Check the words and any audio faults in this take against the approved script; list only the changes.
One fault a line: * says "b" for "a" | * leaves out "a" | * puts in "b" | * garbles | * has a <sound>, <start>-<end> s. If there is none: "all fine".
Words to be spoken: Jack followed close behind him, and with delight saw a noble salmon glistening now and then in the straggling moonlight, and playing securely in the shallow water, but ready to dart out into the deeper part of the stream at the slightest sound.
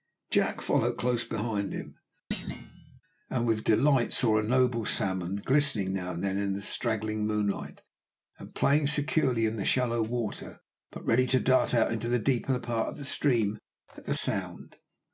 * has a thud, 2.3-3.0 s
* leaves out "slightest"